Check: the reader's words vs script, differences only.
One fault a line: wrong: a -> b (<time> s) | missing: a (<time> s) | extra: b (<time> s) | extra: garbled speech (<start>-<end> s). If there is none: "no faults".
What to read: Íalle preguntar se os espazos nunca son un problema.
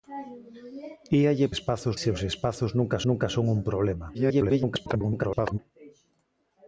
wrong: preguntar -> espazos (1.5 s)
extra: nunca (3.1 s)
extra: garbled speech (4.1-5.6 s)